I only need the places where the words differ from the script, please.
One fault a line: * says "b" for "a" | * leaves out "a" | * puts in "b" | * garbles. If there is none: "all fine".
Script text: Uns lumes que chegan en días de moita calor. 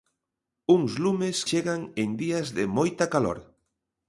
* leaves out "que"